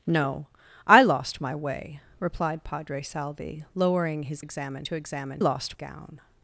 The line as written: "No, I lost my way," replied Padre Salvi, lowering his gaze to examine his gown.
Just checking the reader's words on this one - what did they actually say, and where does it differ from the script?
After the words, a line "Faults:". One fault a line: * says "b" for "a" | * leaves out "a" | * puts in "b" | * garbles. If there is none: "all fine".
"No, I lost my way," replied Padre Salvi, lowering his examine to examine lost gown.
Faults:
* says "examine" for "gaze"
* says "lost" for "his"